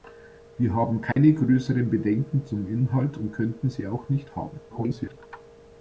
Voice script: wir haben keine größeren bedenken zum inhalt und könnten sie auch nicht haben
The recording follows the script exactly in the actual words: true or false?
false